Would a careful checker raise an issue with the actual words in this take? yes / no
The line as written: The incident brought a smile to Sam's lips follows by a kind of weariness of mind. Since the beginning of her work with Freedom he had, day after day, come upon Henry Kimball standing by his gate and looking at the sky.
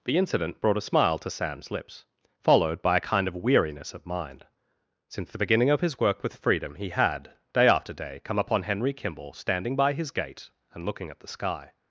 yes